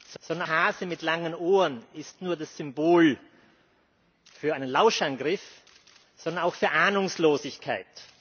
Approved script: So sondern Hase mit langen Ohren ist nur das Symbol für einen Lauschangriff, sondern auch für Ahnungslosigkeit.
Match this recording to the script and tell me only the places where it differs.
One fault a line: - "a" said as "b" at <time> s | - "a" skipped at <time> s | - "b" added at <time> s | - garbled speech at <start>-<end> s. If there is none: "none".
none